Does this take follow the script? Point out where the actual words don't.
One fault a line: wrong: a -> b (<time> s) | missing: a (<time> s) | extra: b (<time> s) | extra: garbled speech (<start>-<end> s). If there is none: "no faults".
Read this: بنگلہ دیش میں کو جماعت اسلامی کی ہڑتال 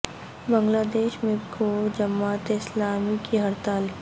no faults